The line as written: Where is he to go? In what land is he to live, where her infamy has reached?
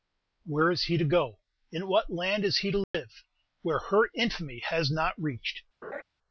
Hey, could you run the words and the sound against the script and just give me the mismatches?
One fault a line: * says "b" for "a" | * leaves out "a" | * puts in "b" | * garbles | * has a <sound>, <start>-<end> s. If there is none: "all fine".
* has a dropout, 2.8-2.9 s
* puts in "not"
* has a laugh, 5.8-6.0 s